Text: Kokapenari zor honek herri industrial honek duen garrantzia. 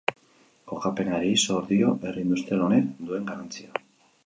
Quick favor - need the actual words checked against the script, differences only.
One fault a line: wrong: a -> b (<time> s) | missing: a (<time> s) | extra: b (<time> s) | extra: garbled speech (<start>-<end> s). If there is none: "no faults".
wrong: honek -> dio (1.7 s)